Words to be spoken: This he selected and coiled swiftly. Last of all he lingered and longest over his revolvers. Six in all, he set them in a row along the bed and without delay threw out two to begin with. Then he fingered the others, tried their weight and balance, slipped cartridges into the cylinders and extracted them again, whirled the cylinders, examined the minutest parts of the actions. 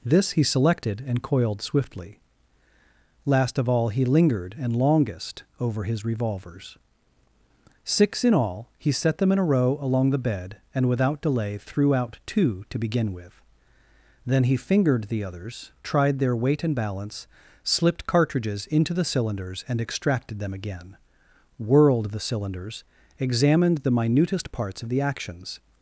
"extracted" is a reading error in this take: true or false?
false